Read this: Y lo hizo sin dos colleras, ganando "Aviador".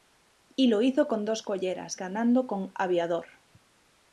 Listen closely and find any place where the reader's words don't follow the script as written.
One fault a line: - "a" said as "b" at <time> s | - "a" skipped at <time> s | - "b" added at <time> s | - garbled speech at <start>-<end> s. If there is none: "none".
- "sin" said as "con" at 1.1 s
- "con" added at 2.5 s